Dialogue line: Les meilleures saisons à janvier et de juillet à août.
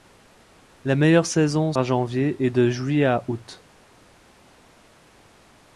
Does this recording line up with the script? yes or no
yes